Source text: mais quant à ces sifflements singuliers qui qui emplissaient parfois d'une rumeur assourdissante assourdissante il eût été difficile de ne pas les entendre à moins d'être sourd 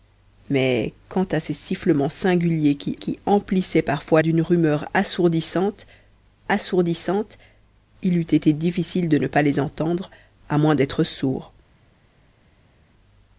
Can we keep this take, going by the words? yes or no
yes